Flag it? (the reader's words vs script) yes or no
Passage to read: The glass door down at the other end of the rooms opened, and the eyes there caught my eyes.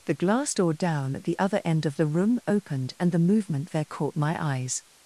yes